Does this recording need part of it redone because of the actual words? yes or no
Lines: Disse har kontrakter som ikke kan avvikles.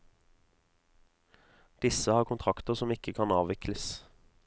no